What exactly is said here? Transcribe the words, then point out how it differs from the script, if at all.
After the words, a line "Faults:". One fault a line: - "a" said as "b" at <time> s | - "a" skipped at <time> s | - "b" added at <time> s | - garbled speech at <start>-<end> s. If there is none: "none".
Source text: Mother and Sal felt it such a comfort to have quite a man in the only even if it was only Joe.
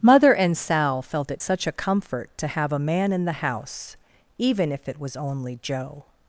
Mother and Sal felt it such a comfort to have a man in the house even if it was only Joe.
Faults:
- "quite" skipped at 2.7 s
- "only" said as "house" at 3.3 s